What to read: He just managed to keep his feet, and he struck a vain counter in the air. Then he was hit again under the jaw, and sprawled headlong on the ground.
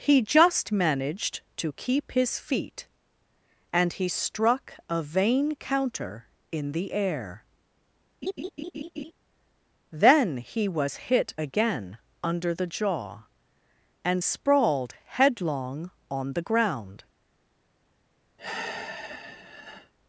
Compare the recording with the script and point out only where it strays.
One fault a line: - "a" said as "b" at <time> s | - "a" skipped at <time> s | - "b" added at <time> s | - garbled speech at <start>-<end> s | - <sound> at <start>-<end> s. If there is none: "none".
- laugh at 8.2-9.1 s
- sigh at 18.4-19.9 s